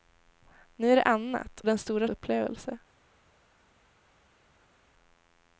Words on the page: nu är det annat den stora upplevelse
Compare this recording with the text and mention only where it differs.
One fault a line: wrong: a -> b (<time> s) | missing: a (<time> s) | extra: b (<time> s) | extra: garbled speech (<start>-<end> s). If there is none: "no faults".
no faults